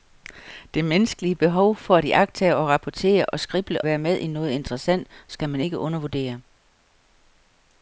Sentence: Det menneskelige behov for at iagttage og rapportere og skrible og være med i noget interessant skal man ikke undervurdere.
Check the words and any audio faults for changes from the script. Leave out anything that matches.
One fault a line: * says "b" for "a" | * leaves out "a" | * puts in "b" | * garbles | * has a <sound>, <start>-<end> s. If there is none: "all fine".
* leaves out "og"